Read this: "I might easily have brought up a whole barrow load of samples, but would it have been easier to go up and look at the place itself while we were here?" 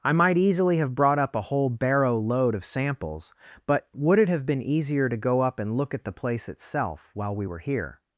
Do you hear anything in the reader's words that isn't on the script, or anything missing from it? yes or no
no